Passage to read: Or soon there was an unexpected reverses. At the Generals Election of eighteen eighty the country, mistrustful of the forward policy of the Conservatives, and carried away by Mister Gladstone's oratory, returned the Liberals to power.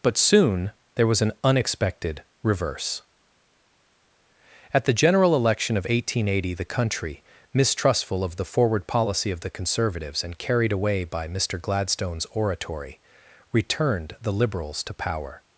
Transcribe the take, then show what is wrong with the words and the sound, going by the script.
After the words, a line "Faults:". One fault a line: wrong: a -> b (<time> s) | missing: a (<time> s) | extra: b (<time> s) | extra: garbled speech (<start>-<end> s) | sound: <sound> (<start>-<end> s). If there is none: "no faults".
But soon there was an unexpected reverse. At the General Election of eighteen eighty the country, mistrustful of the forward policy of the Conservatives, and carried away by Mister Gladstone's oratory, returned the Liberals to power.
Faults:
wrong: Or -> But (0.0 s)
wrong: reverses -> reverse (2.4 s)
wrong: Generals -> General (4.9 s)